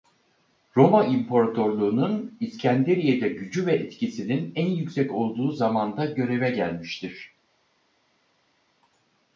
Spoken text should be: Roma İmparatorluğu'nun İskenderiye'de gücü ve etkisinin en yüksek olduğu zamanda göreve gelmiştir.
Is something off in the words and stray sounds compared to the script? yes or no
no